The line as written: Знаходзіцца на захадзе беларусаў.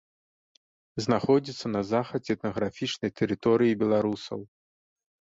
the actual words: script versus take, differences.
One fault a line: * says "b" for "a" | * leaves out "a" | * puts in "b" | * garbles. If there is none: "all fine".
* puts in "этнаграфічнай тэрыторыі"